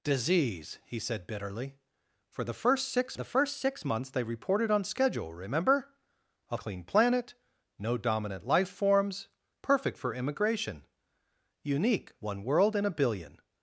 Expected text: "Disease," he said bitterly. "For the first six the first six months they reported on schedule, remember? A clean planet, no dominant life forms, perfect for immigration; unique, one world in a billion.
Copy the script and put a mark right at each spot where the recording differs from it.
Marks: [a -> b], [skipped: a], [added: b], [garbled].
"Disease," he said bitterly. "For the first six the first six months they reported on schedule, remember? A clean planet, no dominant life forms, perfect for immigration; unique, one world in a billion.